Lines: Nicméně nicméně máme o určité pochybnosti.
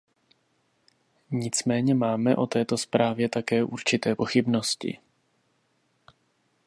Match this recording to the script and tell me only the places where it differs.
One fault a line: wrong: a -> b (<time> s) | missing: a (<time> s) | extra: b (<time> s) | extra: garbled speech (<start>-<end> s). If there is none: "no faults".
missing: nicméně (1.9 s)
extra: této zprávě také (2.5 s)